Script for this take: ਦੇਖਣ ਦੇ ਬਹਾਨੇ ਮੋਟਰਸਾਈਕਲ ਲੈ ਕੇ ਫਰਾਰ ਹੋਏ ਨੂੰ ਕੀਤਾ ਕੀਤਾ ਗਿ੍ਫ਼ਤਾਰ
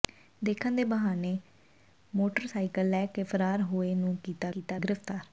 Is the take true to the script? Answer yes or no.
yes